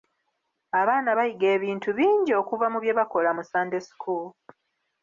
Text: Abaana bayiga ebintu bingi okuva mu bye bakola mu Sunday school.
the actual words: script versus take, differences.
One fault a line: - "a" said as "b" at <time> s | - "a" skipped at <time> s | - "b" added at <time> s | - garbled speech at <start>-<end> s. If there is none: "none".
none